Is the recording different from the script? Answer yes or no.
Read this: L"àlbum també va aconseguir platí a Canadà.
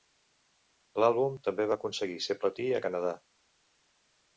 yes